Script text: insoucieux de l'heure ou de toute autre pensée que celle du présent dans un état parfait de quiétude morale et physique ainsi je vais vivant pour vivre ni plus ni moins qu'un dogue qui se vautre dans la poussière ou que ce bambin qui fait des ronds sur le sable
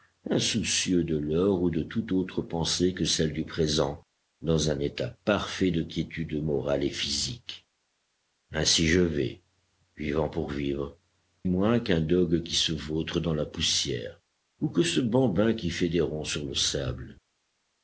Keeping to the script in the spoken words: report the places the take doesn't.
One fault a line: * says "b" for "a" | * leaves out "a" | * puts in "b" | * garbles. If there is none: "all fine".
* leaves out "ni plus ni"